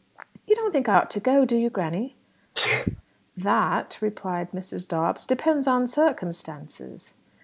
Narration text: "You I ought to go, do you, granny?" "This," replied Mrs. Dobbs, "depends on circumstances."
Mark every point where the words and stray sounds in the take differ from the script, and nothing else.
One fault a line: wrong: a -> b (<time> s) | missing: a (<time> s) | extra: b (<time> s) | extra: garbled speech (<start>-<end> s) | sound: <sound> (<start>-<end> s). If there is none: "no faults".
extra: don't think (0.6 s)
sound: sneeze (2.5-3.0 s)
wrong: This -> That (3.4 s)